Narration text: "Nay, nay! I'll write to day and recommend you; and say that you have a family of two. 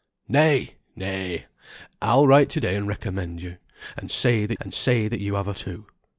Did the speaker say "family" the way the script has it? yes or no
no